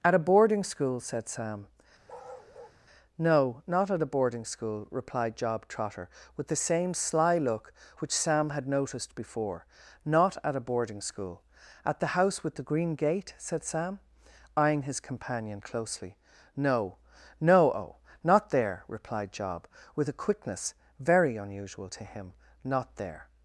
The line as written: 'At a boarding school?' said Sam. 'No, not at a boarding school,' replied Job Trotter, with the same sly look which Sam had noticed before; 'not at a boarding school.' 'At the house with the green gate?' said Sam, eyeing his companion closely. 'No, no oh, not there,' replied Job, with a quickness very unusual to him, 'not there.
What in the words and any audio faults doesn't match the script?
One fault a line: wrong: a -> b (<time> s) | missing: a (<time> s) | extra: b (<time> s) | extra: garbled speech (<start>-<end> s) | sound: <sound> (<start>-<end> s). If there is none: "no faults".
sound: bark (2.1-2.8 s)